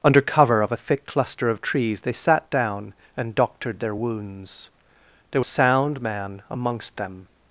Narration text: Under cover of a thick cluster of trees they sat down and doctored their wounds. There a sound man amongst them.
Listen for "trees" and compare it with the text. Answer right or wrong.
right